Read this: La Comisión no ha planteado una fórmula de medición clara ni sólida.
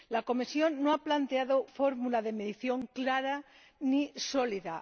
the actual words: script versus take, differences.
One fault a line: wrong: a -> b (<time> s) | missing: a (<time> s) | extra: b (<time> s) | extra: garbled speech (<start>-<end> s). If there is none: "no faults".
missing: una (1.6 s)